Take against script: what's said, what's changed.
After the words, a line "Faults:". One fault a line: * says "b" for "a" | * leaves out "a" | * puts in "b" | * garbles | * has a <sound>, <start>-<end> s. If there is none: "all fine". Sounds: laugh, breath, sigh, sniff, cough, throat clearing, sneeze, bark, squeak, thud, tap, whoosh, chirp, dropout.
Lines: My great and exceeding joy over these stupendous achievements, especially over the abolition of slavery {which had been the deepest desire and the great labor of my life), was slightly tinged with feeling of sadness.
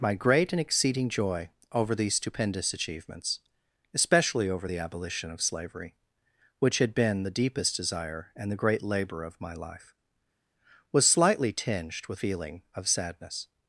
My great and exceeding joy over these stupendous achievements, especially over the abolition of slavery {which had been the deepest desire and the great labor of my life), was slightly tinged with feeling of sadness.
Faults:
all fine